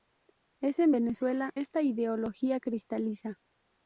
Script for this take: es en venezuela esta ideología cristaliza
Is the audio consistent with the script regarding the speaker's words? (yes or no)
yes